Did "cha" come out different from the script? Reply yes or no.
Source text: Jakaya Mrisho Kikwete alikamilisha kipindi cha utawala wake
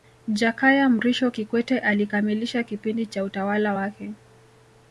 no